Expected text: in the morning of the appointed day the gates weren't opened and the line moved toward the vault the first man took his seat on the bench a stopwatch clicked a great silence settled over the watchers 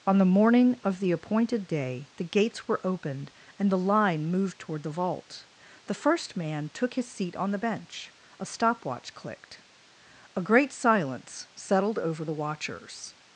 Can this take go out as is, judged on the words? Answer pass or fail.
fail